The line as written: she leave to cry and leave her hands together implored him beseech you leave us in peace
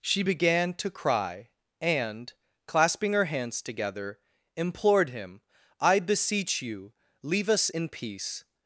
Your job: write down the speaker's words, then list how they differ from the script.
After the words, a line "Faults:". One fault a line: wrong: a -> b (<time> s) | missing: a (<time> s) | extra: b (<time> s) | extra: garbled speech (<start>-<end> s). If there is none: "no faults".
she began to cry and clasping her hands together implored him i beseech you leave us in peace
Faults:
wrong: leave -> began (0.2 s)
wrong: leave -> clasping (2.7 s)
extra: i (5.8 s)